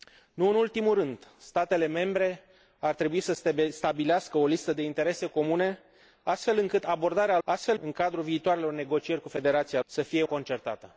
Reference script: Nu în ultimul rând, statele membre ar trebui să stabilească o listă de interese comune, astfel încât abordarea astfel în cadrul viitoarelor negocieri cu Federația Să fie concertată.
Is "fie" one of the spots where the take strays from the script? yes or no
no